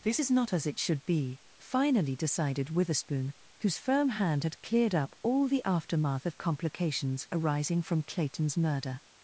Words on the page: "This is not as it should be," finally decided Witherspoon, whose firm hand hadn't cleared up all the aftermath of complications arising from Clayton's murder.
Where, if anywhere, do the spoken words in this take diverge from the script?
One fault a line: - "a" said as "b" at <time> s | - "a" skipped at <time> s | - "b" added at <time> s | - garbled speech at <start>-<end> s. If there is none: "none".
- "hadn't" said as "had" at 4.4 s